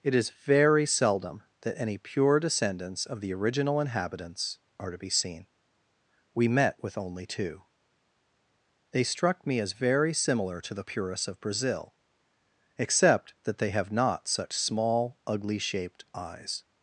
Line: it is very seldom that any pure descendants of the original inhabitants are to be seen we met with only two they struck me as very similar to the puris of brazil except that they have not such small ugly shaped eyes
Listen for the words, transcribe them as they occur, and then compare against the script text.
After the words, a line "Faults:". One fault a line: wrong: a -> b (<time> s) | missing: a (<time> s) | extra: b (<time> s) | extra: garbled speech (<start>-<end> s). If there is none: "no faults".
it is very seldom that any pure descendants of the original inhabitants are to be seen we met with only two they struck me as very similar to the puris of brazil except that they have not such small ugly shaped eyes
Faults:
no faults